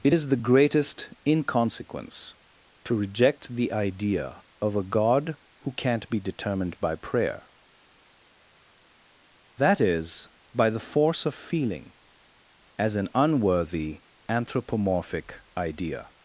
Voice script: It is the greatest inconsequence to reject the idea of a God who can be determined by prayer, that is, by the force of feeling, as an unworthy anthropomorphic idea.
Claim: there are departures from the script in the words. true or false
true